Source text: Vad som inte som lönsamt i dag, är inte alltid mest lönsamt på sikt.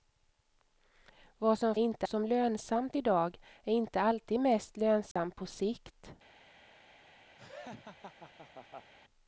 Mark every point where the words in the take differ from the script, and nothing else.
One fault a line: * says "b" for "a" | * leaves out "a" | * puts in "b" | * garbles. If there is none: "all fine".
all fine